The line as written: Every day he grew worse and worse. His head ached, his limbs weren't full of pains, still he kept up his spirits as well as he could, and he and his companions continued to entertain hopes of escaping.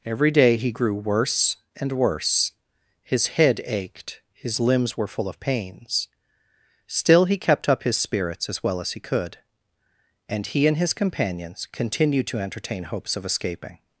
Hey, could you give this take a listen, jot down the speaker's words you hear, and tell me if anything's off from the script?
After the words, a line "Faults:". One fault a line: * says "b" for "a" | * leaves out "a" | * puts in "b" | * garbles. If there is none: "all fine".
Every day he grew worse and worse. His head ached, his limbs were full of pains, still he kept up his spirits as well as he could, and he and his companions continued to entertain hopes of escaping.
Faults:
* says "were" for "weren't"